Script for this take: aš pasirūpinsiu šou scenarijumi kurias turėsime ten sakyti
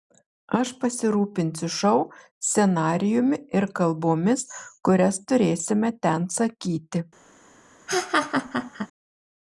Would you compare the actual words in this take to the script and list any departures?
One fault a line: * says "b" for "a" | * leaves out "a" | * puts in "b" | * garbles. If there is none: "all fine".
* puts in "ir kalbomis"